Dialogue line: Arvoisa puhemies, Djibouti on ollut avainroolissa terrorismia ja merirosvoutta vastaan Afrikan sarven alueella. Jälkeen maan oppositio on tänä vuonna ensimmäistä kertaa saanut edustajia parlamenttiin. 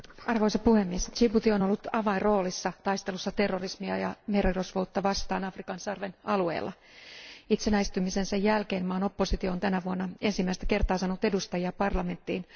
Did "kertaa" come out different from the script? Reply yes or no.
no